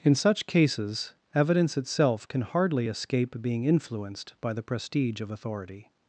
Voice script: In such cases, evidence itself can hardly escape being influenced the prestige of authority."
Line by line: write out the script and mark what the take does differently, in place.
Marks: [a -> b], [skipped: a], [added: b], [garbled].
In such cases, evidence itself can hardly escape being influenced [added: by] the prestige of authority."